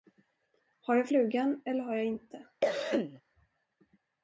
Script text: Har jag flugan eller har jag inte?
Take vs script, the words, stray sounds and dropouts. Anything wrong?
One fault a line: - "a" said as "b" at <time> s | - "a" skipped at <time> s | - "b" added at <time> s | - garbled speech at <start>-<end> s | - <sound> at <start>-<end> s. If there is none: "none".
- cough at 2.6-3.2 s